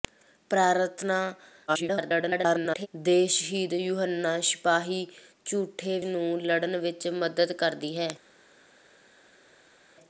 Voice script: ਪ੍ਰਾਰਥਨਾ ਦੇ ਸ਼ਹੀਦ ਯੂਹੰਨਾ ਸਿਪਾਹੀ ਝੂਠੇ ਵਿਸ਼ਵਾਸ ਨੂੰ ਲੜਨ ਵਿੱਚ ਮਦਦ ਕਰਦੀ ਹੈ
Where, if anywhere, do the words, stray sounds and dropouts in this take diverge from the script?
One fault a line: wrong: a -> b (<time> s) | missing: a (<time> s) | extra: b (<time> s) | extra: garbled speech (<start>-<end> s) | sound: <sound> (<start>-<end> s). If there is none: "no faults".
extra: garbled speech (1.7-2.9 s)
missing: ਵਿਸ਼ਵਾਸ (6.0 s)